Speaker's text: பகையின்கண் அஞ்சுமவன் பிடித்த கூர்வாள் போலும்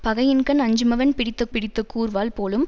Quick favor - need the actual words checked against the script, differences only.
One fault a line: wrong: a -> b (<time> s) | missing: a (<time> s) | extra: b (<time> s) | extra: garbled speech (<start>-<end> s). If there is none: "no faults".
extra: பிடித்த (1.5 s)